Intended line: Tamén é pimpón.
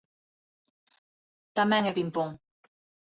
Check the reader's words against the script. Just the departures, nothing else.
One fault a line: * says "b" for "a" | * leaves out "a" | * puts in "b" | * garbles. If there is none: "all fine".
all fine